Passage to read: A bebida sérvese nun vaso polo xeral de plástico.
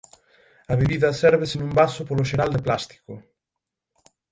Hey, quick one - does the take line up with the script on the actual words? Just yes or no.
yes